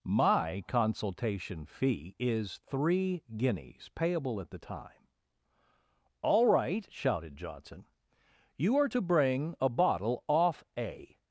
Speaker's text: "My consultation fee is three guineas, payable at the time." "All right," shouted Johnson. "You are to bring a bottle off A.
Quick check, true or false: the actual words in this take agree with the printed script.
true